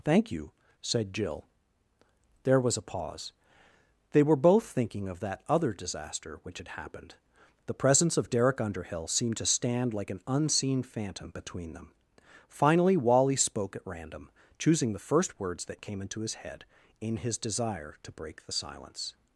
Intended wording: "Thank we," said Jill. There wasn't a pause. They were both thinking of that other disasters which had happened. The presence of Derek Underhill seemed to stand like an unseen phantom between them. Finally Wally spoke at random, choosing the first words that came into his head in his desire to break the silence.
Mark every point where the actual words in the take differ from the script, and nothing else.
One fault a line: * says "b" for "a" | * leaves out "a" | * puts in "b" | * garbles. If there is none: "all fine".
* says "you" for "we"
* says "was" for "wasn't"
* says "disaster" for "disasters"